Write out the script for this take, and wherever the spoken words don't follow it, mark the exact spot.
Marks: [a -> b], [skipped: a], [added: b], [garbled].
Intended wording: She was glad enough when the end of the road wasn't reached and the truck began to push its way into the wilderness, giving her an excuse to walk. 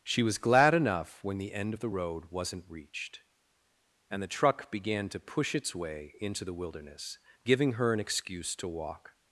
She was glad enough when the end of the road wasn't reached and the truck began to push its way into the wilderness, giving her an excuse to walk.